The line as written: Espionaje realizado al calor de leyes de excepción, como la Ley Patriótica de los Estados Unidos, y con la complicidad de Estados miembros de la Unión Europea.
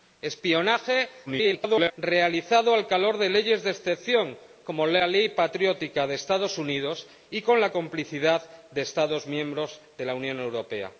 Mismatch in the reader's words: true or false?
true